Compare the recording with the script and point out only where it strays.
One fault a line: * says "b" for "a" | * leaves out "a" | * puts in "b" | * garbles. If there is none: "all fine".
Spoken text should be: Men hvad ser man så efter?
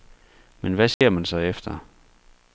all fine